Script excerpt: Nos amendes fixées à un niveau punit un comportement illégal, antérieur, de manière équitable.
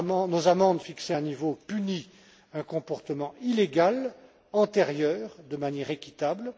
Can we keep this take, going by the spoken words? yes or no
yes